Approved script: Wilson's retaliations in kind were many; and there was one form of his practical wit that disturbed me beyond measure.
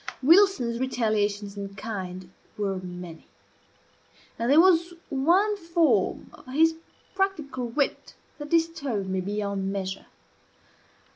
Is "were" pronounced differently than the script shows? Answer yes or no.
no